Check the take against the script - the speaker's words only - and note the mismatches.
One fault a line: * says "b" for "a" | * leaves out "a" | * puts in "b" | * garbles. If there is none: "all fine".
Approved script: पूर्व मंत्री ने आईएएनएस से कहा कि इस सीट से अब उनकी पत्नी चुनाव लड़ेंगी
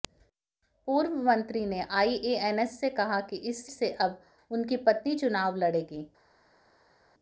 * leaves out "सीट"